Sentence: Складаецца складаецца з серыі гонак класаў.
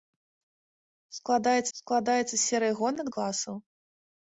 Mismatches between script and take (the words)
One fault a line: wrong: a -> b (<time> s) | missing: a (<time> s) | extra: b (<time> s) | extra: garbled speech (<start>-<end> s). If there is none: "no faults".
no faults